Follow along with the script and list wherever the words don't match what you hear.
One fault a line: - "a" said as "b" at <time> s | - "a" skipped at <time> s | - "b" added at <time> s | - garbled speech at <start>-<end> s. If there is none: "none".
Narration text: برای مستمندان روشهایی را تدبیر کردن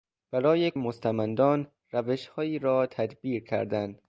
none